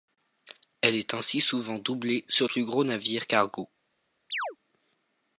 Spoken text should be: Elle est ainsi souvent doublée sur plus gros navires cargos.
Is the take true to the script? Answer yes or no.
yes